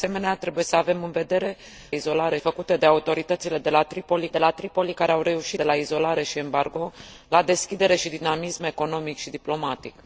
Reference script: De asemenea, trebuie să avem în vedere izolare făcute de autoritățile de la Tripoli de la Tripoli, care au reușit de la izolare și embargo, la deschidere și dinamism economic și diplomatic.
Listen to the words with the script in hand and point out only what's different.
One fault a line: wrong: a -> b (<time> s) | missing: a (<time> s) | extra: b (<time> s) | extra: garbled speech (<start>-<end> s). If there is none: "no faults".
no faults